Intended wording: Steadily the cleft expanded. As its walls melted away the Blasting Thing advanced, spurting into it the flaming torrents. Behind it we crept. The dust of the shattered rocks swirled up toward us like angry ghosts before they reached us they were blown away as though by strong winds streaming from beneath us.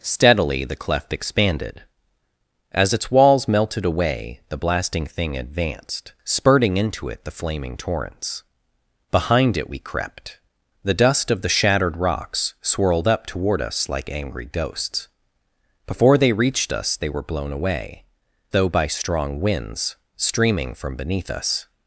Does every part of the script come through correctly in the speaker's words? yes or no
no